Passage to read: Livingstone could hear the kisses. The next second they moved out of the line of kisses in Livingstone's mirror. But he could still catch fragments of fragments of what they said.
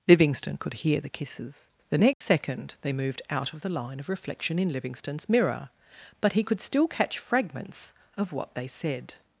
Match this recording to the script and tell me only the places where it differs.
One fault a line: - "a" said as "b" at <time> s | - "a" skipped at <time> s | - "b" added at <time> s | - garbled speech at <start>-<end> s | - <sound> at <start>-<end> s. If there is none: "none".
- dropout at 2.1-2.2 s
- "kisses" said as "reflection" at 4.1 s
- "fragments of" skipped at 8.3 s